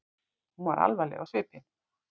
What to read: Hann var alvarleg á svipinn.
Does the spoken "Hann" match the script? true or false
false